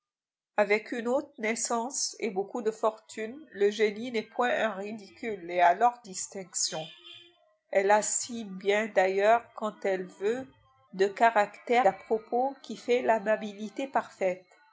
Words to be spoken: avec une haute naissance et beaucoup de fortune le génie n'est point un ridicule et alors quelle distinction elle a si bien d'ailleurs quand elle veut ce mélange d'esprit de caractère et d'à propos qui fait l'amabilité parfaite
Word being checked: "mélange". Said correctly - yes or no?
no